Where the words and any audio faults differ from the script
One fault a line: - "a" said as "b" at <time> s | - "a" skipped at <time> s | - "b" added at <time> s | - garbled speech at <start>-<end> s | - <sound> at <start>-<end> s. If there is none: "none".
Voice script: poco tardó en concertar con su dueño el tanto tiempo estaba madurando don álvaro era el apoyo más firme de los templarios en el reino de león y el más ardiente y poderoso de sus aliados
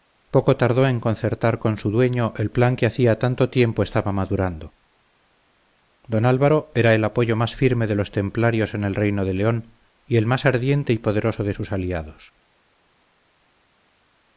- "plan que hacía" added at 2.5 s